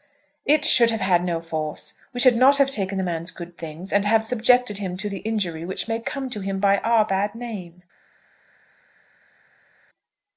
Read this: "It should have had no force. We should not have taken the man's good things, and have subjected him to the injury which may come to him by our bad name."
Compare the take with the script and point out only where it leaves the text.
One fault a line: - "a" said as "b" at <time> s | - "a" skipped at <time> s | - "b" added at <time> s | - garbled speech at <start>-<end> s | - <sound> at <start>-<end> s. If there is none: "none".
none